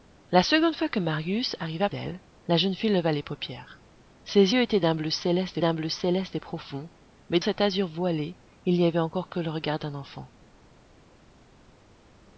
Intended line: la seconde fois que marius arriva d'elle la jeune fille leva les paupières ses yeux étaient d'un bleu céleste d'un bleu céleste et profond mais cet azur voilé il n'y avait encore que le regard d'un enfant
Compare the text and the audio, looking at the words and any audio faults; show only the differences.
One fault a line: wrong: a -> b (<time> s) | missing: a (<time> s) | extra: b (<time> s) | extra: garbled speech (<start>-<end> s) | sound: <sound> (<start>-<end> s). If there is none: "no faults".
no faults